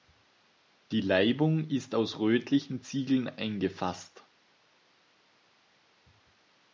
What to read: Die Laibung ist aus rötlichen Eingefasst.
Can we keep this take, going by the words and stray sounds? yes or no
no